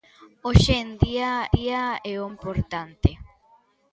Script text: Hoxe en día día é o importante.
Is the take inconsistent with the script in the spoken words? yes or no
no